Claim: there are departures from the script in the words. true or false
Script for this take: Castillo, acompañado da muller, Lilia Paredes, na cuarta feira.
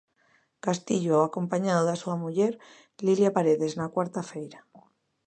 true